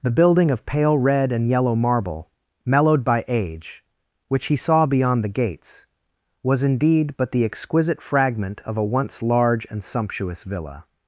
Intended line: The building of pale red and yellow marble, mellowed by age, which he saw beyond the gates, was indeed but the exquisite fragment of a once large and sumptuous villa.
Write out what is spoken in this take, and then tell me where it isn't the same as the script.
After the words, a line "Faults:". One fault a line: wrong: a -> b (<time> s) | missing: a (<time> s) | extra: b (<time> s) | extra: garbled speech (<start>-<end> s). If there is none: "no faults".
The building of pale red and yellow marble, mellowed by age, which he saw beyond the gates, was indeed but the exquisite fragment of a once large and sumptuous villa.
Faults:
no faults